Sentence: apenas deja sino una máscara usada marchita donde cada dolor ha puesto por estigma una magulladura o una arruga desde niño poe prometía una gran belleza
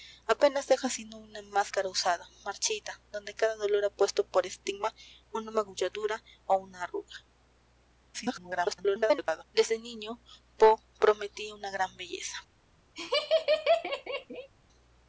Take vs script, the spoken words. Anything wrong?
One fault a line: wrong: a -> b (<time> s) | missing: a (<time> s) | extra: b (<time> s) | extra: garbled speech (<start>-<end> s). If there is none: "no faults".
extra: garbled speech (8.1-9.4 s)